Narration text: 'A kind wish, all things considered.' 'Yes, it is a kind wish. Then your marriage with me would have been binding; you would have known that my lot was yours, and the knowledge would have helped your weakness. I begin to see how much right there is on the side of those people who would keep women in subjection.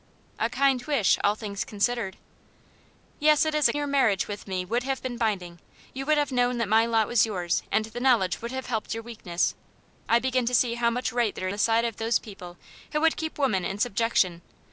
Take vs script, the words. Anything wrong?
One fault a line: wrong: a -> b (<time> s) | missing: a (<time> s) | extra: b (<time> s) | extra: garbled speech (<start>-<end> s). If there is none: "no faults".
missing: kind wish Then (3.7 s)
missing: is on (11.5 s)